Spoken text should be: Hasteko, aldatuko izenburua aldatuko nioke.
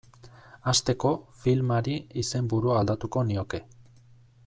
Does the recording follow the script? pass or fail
fail